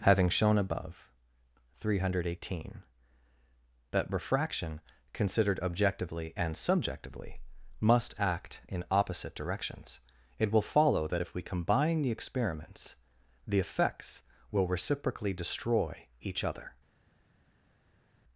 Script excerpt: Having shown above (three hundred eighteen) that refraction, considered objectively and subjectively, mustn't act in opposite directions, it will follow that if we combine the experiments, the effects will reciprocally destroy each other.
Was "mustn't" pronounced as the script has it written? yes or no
no